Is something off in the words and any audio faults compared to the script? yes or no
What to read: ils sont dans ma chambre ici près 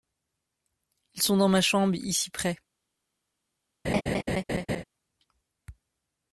yes